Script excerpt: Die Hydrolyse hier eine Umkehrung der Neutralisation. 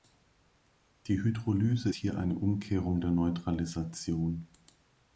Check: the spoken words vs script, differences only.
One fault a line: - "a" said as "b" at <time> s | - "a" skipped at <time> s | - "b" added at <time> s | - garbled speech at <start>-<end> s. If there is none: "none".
none